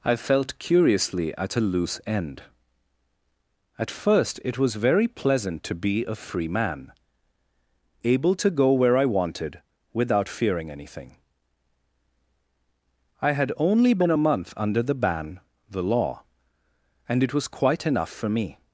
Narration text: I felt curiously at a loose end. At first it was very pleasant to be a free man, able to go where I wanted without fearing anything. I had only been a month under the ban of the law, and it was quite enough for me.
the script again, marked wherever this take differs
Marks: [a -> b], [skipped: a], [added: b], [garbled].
I felt curiously at a loose end. At first it was very pleasant to be a free man, able to go where I wanted without fearing anything. I had only been a month under the ban [skipped: of] the law, and it was quite enough for me.